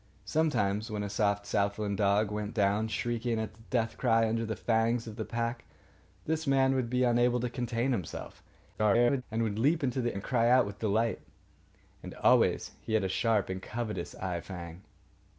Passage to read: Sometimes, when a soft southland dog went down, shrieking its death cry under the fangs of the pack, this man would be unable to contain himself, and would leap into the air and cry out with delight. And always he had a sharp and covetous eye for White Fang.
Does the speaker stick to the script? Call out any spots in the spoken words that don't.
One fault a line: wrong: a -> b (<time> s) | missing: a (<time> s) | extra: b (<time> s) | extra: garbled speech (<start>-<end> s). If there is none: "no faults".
extra: garbled speech (8.7-9.2 s)
missing: air (10.2 s)
missing: for White (14.4 s)